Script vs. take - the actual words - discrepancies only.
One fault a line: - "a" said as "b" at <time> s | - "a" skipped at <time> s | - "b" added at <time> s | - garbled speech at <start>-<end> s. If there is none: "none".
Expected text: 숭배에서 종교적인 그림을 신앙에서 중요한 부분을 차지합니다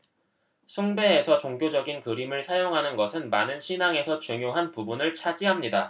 - "사용하는 것은 많은" added at 2.4 s